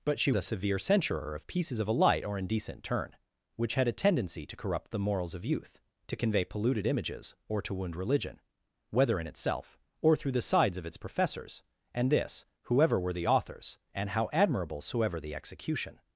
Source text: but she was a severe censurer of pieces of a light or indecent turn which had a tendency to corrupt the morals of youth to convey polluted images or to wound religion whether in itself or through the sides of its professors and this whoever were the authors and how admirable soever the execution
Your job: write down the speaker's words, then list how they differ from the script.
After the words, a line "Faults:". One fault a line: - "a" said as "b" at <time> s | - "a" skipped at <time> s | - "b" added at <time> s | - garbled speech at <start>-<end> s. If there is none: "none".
but she a severe censurer of pieces of a light or indecent turn which had a tendency to corrupt the morals of youth to convey polluted images or to wound religion whether in itself or through the sides of its professors and this whoever were the authors and how admirable soever the execution
Faults:
- "was" skipped at 0.3 s